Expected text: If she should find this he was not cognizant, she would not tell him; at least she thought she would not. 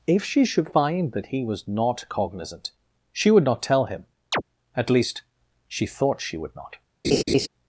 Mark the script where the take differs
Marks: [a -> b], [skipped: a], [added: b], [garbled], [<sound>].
If she should find [this -> that] he was not cognizant, she would not tell him; [chirp] at least she thought she would not. [laugh]